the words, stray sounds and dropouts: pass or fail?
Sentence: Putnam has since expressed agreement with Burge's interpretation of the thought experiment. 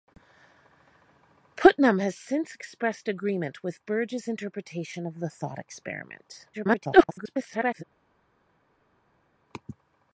fail